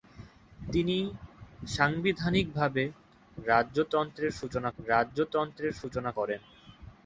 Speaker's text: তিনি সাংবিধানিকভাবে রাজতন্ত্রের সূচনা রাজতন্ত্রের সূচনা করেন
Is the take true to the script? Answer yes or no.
yes